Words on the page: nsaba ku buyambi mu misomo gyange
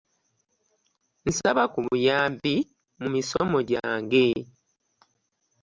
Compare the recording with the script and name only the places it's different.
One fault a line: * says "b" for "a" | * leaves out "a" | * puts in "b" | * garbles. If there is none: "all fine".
all fine